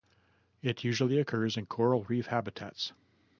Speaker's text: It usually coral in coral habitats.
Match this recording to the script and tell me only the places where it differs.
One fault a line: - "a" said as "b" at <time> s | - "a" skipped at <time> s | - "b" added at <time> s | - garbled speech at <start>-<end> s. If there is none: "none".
- "coral" said as "occurs" at 1.2 s
- "reef" added at 2.1 s